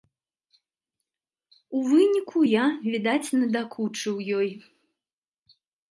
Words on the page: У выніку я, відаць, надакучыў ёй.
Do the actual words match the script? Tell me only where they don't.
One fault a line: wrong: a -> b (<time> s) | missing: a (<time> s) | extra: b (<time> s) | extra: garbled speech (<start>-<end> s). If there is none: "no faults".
no faults